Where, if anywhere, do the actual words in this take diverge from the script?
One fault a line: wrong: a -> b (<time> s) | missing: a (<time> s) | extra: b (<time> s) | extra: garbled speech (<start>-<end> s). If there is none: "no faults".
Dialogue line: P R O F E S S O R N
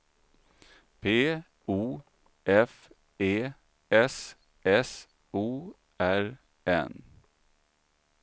missing: R (1.4 s)